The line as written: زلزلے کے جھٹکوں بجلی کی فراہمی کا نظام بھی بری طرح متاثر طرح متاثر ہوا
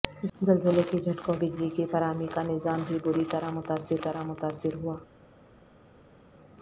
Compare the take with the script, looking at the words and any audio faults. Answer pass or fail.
pass